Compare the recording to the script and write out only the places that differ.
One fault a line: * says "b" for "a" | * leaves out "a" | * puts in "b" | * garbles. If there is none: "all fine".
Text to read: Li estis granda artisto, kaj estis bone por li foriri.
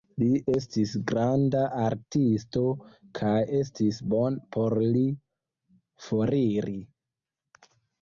all fine